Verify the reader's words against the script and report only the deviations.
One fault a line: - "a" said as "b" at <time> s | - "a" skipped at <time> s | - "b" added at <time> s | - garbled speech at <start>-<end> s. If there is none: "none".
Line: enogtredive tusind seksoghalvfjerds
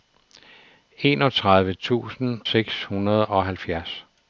none